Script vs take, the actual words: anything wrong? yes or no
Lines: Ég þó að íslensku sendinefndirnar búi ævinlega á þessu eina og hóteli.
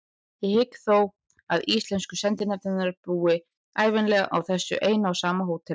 yes